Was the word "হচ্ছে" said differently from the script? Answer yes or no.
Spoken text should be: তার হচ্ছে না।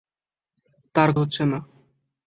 no